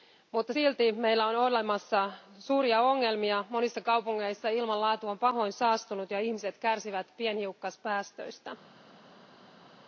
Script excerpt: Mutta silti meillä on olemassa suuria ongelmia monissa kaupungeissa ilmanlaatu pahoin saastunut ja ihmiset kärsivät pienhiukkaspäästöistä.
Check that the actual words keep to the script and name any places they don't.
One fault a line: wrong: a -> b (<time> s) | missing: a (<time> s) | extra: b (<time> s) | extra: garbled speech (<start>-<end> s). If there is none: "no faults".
extra: on (5.1 s)